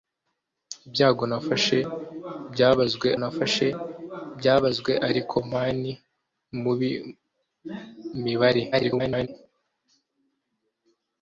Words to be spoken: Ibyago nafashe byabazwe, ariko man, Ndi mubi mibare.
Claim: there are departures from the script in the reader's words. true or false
true